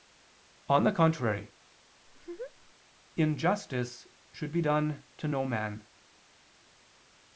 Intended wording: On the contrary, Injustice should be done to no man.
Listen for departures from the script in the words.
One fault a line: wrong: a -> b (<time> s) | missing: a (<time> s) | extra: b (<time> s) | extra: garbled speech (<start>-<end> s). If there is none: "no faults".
no faults